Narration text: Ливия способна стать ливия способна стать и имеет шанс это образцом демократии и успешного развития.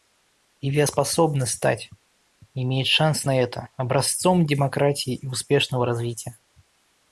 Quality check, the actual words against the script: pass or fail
fail